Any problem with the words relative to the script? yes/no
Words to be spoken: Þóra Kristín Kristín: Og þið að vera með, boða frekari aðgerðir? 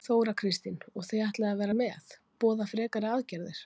yes